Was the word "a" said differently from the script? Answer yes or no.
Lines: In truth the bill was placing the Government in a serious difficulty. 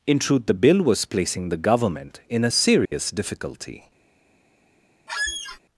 no